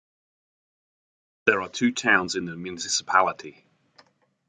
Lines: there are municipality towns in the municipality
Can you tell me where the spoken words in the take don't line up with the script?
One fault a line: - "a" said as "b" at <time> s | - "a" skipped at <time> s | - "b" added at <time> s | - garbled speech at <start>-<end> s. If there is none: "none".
- "municipality" said as "two" at 1.7 s